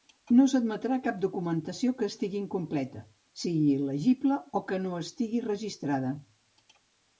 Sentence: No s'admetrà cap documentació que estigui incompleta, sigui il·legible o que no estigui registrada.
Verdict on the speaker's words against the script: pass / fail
pass